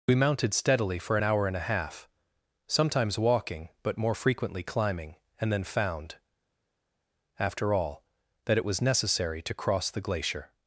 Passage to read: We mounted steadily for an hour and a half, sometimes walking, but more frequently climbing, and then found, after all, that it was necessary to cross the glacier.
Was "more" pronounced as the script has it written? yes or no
yes